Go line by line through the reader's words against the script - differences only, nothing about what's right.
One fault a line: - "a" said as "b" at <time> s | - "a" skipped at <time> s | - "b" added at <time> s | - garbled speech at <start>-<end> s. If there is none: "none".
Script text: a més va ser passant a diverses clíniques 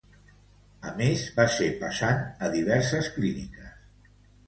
none